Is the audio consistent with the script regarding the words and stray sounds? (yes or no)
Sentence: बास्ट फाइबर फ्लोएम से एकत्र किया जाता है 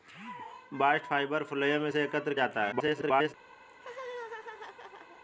no